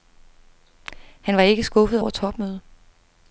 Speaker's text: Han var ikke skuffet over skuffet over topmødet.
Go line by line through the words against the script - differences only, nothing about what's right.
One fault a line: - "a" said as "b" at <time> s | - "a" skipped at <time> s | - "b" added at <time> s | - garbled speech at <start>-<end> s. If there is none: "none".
- "skuffet over" skipped at 2.1 s